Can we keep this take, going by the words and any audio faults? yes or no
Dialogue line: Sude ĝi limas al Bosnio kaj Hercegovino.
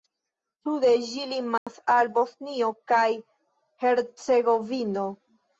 no